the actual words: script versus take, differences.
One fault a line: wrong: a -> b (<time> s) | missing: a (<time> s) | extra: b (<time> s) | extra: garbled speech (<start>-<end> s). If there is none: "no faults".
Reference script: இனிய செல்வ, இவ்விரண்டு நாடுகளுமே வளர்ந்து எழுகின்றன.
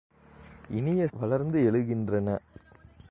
missing: செல்வ இவ்விரண்டு நாடுகளுமே (1.1 s)